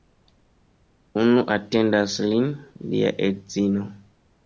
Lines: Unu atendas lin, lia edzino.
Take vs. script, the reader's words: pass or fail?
pass